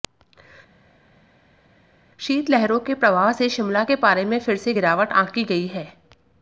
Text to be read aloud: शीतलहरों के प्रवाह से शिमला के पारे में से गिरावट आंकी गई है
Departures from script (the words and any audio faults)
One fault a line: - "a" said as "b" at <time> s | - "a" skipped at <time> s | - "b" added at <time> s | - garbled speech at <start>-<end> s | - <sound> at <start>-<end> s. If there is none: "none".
- "फिर" added at 4.4 s